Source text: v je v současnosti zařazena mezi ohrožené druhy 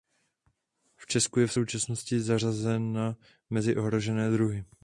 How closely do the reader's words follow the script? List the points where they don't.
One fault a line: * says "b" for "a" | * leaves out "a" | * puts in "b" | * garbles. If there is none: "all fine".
* puts in "česku"